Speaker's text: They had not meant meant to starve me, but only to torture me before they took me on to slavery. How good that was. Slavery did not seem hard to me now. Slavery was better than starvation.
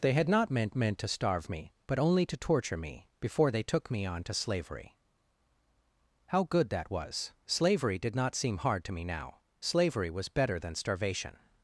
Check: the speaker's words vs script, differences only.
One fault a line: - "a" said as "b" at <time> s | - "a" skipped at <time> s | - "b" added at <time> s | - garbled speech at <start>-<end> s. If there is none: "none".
none